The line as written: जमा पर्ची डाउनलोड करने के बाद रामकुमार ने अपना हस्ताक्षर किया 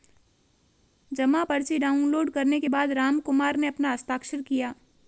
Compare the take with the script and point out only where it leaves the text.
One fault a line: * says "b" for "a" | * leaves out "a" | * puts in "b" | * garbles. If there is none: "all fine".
all fine